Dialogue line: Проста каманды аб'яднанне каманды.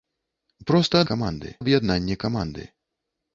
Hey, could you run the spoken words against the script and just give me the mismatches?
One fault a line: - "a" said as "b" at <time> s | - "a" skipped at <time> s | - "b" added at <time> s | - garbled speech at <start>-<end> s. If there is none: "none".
none